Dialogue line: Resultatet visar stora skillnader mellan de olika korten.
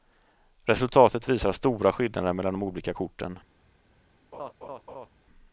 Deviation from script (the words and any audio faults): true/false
true